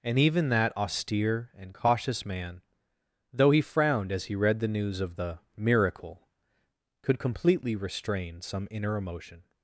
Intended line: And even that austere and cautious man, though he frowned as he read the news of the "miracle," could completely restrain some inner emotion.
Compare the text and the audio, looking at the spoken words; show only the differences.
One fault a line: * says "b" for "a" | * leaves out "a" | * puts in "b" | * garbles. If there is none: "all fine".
all fine